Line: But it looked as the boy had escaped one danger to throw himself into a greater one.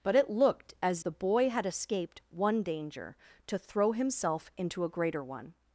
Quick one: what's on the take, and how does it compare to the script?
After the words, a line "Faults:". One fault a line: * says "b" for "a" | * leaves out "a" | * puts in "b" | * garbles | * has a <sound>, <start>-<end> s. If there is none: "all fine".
But it looked as the boy had escaped one danger to throw himself into a greater one.
Faults:
all fine